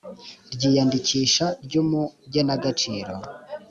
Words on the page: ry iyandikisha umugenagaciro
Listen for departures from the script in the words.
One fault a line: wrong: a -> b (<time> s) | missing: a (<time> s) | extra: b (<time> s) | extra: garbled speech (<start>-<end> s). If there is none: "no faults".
extra: ry (1.6 s)